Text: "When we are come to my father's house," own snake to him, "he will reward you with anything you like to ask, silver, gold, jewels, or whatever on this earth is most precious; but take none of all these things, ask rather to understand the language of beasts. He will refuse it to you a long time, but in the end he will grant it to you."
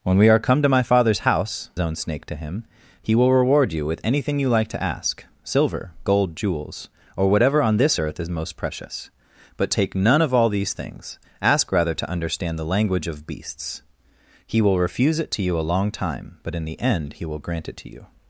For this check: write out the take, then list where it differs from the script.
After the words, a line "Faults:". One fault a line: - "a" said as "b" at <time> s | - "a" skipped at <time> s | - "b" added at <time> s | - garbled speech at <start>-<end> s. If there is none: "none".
"When we are come to my father's house," own snake to him, "he will reward you with anything you like to ask, silver, gold, jewels, or whatever on this earth is most precious; but take none of all these things, ask rather to understand the language of beasts. He will refuse it to you a long time, but in the end he will grant it to you."
Faults:
none